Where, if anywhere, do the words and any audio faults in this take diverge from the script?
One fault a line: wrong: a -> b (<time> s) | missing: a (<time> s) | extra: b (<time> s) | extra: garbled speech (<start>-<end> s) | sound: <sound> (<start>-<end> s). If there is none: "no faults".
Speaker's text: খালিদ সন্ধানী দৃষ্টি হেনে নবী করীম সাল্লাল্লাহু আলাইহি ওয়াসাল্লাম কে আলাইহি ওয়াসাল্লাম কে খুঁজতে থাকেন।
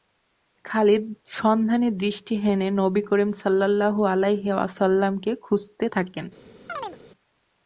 missing: আলাইহি ওয়াসাল্লাম কে (5.3 s)
sound: chirp (6.7-7.0 s)